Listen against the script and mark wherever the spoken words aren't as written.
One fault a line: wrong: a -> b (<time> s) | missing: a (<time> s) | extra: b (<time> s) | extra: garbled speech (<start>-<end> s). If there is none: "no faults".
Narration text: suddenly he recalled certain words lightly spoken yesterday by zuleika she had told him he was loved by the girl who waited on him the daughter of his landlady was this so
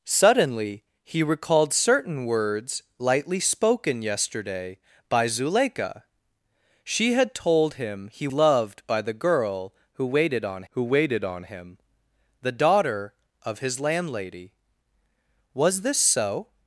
missing: was (8.3 s)
extra: who waited on (10.7 s)